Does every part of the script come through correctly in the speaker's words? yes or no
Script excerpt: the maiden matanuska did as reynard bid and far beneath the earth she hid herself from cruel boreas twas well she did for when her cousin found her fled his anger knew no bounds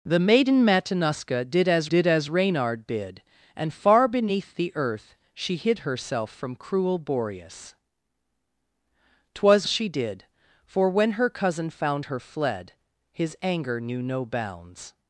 no